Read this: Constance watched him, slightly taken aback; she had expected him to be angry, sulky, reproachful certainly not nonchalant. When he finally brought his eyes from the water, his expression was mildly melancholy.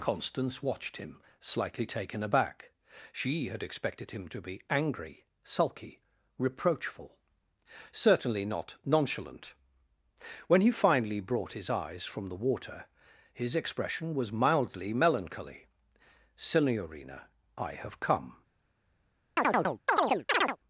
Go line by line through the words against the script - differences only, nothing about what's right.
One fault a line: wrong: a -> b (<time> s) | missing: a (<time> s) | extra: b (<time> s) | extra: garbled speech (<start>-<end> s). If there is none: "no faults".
extra: Signorina I have come (16.4 s)